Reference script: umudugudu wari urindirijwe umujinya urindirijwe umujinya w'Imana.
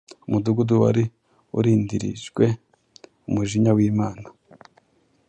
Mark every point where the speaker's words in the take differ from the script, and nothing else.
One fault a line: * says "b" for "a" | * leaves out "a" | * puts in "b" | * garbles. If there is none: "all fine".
* leaves out "urindirijwe umujinya"